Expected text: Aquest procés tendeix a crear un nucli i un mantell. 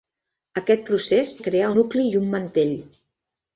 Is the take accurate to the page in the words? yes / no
no